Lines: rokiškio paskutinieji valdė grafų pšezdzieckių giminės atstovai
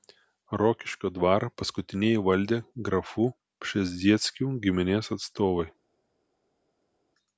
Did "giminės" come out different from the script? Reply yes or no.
no